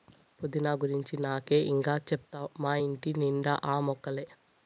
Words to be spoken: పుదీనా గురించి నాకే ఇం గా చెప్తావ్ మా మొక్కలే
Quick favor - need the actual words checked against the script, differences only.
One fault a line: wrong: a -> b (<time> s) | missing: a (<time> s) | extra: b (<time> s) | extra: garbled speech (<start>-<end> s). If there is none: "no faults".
extra: ఇంటి నిండా ఆ (2.8 s)